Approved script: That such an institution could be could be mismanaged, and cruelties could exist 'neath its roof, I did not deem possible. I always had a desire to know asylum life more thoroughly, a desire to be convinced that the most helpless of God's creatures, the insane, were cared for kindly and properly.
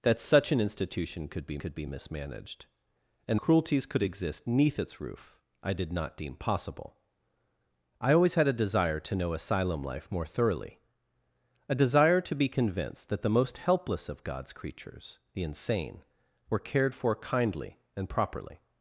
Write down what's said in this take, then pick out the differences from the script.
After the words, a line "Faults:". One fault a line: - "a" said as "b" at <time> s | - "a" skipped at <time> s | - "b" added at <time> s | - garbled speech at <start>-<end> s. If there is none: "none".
That such an institution could be could be mismanaged, and cruelties could exist 'neath its roof, I did not deem possible. I always had a desire to know asylum life more thoroughly, a desire to be convinced that the most helpless of God's creatures, the insane, were cared for kindly and properly.
Faults:
none